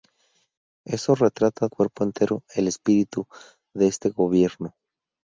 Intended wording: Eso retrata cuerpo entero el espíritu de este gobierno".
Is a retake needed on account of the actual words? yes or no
no